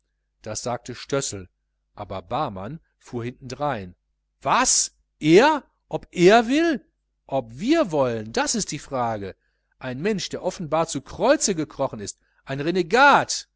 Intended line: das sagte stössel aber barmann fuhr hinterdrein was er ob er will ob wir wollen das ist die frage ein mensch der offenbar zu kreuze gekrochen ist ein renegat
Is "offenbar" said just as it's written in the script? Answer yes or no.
yes